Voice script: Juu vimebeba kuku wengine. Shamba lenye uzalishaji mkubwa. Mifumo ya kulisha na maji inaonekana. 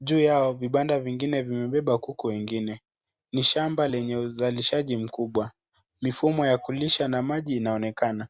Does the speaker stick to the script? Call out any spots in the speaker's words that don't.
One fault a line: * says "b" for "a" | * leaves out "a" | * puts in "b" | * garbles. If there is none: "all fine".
* puts in "yao vibanda vingine"
* puts in "Ni"